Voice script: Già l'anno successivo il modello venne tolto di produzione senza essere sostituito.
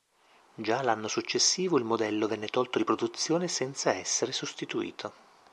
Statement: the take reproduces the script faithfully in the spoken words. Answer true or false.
true